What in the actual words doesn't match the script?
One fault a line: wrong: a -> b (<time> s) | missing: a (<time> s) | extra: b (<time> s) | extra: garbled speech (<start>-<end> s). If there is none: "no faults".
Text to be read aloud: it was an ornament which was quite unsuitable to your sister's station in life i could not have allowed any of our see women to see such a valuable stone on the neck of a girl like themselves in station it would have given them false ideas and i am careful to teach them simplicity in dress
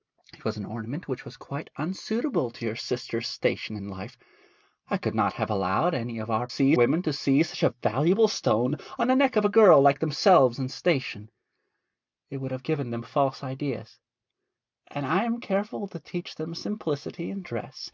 no faults